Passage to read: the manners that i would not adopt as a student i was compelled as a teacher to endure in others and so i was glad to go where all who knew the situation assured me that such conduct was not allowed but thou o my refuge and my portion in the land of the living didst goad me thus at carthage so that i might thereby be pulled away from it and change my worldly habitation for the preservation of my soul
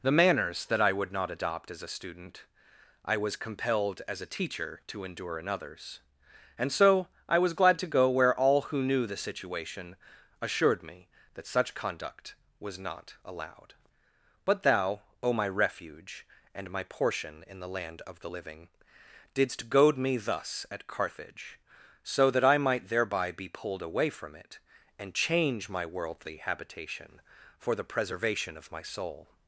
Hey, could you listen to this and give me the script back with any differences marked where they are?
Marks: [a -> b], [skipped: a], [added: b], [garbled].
the manners that i would not adopt as a student i was compelled as a teacher to endure in others and so i was glad to go where all who knew the situation assured me that such conduct was not allowed but thou o my refuge and my portion in the land of the living didst goad me thus at carthage so that i might thereby be pulled away from it and change my worldly habitation for the preservation of my soul